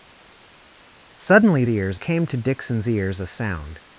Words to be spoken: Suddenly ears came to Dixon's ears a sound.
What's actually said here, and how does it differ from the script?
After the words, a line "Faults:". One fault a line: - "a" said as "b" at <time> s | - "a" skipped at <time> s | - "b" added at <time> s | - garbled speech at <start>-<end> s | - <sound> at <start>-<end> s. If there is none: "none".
Suddenly ears came to Dixon's ears a sound.
Faults:
none